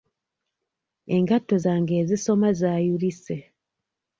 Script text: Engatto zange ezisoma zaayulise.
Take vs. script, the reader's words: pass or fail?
pass